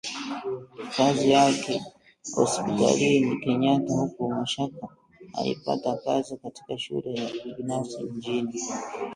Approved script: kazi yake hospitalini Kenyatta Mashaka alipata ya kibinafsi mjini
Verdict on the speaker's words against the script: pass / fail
fail